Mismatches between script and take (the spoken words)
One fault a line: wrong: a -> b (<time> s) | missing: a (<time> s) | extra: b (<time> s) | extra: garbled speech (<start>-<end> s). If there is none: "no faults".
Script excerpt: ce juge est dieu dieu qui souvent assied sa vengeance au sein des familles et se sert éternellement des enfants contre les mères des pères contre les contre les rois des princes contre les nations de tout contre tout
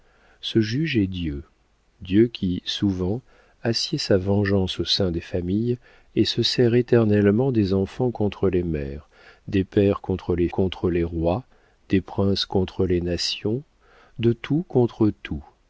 no faults